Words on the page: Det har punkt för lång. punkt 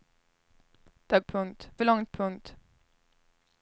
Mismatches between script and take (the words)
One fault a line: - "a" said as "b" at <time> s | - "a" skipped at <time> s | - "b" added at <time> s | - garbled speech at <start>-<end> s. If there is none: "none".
none